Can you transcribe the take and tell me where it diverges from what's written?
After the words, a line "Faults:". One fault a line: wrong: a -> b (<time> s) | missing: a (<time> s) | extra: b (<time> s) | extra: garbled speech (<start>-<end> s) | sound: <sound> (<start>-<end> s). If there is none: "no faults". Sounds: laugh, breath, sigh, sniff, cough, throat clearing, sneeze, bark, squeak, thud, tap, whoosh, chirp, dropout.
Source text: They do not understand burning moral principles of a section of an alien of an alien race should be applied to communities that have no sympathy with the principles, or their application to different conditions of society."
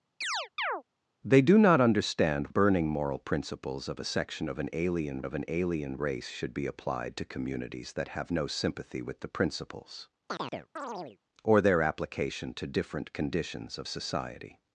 They do not understand burning moral principles of a section of an alien of an alien race should be applied to communities that have no sympathy with the principles, or their application to different conditions of society."
Faults:
sound: chirp (0.2-0.8 s)
sound: chirp (10.3-11.2 s)